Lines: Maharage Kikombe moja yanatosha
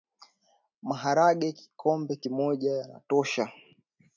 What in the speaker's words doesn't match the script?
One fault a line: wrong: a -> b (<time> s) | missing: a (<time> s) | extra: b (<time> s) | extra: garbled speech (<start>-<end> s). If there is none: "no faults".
no faults